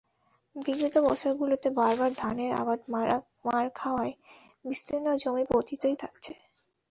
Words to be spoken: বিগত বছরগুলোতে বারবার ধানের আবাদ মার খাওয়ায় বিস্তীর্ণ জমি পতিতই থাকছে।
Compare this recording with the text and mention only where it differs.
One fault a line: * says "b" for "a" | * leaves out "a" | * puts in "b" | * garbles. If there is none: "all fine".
all fine